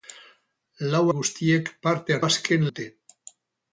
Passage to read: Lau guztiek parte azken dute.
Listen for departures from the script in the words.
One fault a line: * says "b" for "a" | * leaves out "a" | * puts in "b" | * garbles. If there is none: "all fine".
all fine